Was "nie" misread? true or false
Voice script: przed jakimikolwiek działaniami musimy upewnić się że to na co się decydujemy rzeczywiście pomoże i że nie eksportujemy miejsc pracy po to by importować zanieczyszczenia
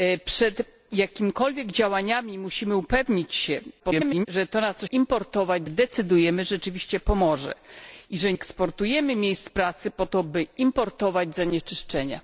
true